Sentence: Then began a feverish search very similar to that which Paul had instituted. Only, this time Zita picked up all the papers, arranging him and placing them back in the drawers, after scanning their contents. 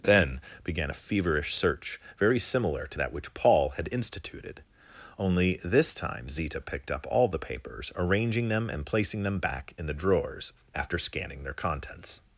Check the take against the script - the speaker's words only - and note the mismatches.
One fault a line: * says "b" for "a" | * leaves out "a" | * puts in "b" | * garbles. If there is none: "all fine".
* says "them" for "him"